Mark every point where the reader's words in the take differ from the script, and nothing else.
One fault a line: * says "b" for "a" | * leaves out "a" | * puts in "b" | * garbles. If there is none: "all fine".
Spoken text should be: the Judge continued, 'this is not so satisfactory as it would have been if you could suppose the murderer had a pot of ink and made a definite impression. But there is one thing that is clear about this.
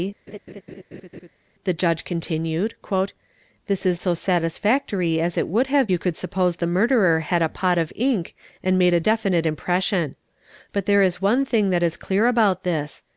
* leaves out "not"
* leaves out "been if"